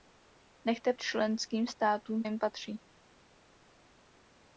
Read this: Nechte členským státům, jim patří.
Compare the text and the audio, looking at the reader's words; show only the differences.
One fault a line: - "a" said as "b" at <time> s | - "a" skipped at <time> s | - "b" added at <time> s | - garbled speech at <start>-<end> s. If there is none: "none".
none